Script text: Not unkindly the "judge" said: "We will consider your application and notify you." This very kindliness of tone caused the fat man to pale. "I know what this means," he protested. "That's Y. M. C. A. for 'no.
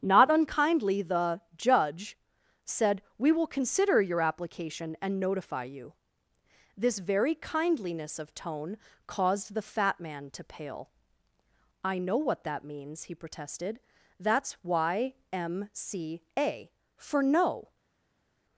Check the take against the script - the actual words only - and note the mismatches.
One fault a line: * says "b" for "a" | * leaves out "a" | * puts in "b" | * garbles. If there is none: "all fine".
* says "that" for "this"